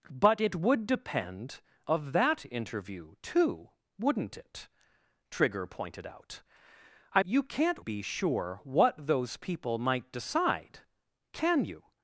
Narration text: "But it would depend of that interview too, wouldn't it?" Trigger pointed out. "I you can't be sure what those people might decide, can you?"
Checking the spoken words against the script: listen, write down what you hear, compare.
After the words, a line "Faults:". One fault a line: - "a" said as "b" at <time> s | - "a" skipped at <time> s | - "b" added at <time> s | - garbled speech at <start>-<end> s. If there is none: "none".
"But it would depend of that interview too, wouldn't it?" Trigger pointed out. "I you can't be sure what those people might decide, can you?"
Faults:
none